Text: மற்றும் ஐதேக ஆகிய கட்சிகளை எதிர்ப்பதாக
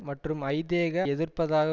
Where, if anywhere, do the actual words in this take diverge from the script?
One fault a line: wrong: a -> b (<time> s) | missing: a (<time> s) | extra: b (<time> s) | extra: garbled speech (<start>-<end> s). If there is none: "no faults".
missing: ஆகிய கட்சிகளை (1.1 s)